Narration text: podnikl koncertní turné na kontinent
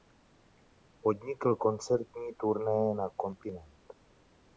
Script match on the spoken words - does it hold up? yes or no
yes